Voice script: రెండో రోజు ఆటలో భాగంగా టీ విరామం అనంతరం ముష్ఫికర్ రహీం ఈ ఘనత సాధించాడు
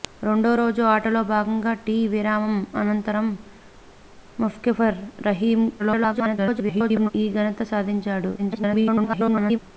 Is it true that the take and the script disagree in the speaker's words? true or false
true